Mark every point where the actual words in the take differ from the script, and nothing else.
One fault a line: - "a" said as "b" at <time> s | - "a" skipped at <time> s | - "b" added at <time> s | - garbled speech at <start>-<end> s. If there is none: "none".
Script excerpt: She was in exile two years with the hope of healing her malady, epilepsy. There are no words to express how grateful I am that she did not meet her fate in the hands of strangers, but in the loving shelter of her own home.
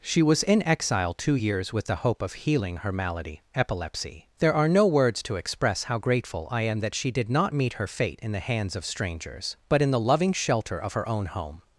none